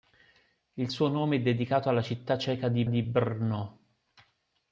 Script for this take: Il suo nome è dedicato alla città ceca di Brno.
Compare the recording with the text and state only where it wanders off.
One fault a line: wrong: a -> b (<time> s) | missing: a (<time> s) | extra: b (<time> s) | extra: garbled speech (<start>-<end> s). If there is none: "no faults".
extra: di (2.9 s)